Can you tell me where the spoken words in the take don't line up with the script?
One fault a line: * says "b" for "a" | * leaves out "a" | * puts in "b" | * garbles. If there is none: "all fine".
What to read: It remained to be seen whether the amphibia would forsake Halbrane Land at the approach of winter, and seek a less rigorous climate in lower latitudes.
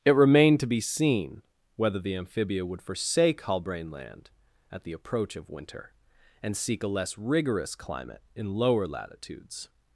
all fine